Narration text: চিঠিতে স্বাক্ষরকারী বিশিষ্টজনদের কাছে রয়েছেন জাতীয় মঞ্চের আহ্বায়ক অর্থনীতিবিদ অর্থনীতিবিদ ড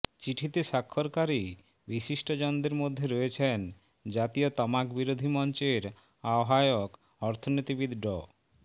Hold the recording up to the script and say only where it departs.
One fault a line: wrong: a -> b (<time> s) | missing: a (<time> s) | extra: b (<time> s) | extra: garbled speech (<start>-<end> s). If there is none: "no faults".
wrong: কাছে -> মধ্যে (2.8 s)
extra: তামাকবিরোধী (4.6 s)
missing: অর্থনীতিবিদ (7.9 s)